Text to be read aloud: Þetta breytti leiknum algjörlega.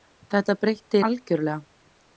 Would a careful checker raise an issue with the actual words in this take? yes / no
yes